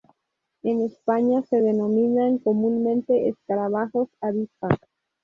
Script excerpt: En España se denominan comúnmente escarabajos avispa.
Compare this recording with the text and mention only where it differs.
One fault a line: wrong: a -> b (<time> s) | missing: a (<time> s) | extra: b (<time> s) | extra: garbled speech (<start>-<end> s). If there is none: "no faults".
no faults